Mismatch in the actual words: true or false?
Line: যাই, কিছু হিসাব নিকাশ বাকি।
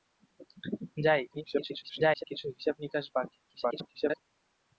true